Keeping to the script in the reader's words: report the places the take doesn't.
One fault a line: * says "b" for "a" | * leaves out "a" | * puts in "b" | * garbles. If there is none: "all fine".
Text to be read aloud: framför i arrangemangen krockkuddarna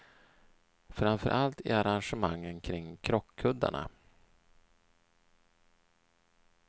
* puts in "allt"
* puts in "kring"